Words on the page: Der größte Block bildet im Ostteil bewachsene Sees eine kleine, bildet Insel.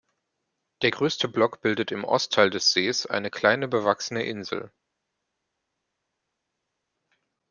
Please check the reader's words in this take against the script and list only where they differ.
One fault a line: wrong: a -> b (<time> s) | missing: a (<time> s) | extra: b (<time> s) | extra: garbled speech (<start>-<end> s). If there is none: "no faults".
wrong: bewachsene -> des (2.5 s)
wrong: bildet -> bewachsene (3.7 s)